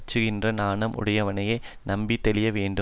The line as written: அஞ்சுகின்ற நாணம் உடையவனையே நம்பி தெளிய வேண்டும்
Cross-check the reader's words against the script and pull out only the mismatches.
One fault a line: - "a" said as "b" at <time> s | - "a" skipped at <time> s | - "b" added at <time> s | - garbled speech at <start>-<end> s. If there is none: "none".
none